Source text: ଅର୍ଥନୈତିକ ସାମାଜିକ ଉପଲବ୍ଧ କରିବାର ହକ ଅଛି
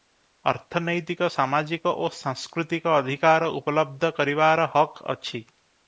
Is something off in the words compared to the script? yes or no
yes